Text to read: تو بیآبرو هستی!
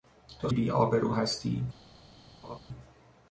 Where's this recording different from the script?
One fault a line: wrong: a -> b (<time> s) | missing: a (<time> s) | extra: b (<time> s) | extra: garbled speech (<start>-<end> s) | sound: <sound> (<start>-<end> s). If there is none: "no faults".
sound: laugh (2.4-2.6 s)